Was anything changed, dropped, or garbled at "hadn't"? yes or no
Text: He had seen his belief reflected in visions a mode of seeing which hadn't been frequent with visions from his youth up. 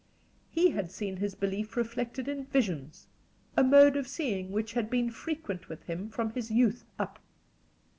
yes